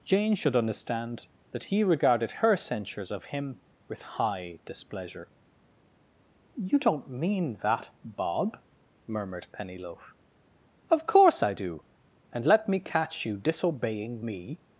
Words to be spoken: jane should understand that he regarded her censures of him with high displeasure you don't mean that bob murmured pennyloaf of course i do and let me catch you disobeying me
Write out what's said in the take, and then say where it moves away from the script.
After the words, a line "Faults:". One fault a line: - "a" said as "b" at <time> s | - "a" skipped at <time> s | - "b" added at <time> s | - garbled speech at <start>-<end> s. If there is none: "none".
jane should understand that he regarded her censures of him with high displeasure you don't mean that bob murmured pennyloaf of course i do and let me catch you disobeying me
Faults:
none